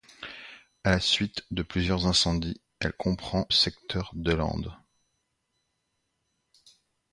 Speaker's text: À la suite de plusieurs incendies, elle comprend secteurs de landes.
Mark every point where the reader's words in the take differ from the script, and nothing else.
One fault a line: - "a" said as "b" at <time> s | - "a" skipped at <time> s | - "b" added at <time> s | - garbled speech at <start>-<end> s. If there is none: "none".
none